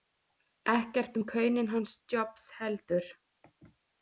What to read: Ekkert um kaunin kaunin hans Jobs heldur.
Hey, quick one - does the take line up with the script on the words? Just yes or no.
no